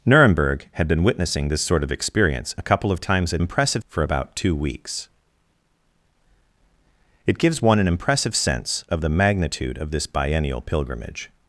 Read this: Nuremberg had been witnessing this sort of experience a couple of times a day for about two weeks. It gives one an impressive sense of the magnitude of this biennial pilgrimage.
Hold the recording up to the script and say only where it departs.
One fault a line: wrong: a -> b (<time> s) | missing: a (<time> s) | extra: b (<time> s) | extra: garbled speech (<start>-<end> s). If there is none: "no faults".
wrong: day -> impressive (3.4 s)